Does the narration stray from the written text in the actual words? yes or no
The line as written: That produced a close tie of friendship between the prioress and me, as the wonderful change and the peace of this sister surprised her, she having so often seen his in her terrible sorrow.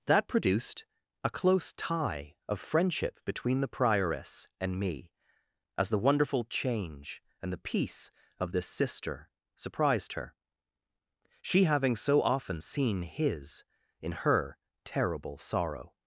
no